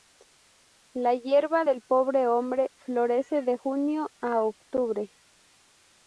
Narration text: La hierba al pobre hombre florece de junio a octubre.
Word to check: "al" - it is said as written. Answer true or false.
false